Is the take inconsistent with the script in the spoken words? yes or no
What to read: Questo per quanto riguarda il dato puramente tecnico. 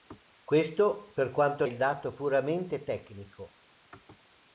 yes